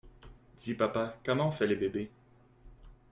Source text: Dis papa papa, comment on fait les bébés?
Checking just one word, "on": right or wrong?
right